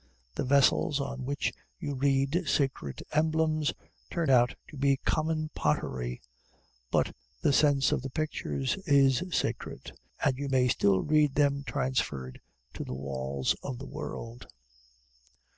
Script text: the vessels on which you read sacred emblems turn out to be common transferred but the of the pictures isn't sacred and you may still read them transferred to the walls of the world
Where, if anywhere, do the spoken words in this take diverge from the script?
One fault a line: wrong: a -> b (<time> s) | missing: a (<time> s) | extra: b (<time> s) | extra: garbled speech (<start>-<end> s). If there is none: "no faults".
wrong: transferred -> pottery (5.6 s)
extra: sense (7.5 s)
wrong: isn't -> is (8.9 s)